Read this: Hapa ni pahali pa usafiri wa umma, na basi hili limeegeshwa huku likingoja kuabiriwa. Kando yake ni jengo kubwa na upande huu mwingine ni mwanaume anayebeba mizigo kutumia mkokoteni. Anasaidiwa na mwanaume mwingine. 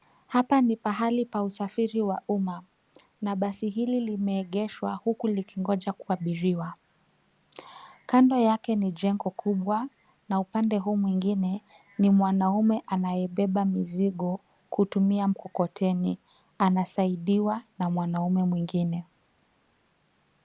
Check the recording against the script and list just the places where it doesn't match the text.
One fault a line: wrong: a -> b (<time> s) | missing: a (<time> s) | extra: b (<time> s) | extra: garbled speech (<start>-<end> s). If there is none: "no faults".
no faults